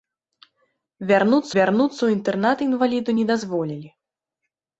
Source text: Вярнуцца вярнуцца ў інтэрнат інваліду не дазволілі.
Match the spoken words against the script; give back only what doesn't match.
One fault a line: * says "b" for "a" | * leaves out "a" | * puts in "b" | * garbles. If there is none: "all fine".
all fine